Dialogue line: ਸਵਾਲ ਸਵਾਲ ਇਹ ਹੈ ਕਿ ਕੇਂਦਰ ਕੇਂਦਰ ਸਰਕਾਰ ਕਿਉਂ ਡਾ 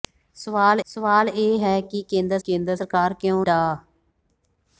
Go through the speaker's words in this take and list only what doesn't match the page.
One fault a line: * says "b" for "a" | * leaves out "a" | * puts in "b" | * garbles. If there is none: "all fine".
all fine